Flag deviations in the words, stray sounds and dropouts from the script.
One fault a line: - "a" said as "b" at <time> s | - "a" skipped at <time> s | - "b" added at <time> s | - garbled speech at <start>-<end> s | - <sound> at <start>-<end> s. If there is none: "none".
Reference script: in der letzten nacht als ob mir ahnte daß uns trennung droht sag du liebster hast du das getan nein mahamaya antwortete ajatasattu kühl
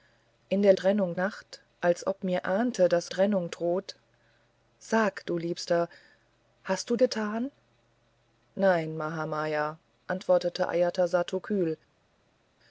- "letzten" said as "trennung" at 0.7 s
- "uns" skipped at 3.1 s
- "das" skipped at 7.0 s